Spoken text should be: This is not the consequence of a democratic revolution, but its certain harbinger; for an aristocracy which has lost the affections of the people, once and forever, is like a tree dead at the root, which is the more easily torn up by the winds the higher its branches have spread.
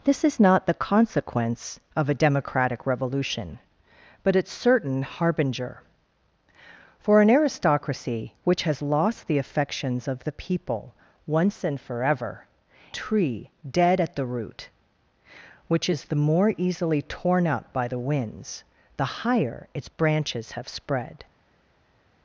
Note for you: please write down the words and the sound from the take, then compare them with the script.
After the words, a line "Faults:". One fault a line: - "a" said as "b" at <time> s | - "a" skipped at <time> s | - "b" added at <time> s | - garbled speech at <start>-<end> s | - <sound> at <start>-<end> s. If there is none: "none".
This is not the consequence of a democratic revolution, but its certain harbinger; for an aristocracy which has lost the affections of the people, once and forever, tree dead at the root, which is the more easily torn up by the winds the higher its branches have spread.
Faults:
- "is like a" skipped at 12.5 s